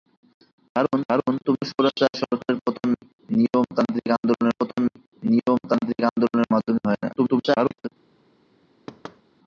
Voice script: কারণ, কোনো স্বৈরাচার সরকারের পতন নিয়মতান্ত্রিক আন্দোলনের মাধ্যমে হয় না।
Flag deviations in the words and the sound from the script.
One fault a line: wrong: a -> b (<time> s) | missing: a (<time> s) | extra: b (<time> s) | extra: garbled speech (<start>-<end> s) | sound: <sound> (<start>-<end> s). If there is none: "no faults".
extra: কারণ (1.1 s)
extra: পতন নিয়মতান্ত্রিক আন্দোলনের (4.6 s)
extra: garbled speech (7.2-7.9 s)
sound: thud (8.9-9.2 s)